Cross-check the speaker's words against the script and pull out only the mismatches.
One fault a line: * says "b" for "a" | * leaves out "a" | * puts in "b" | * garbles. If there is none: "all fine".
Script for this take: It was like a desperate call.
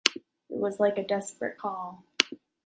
all fine